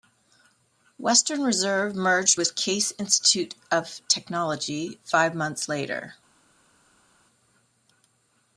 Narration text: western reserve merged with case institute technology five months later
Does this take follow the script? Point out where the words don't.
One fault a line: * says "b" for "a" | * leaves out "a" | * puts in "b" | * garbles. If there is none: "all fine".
* puts in "of"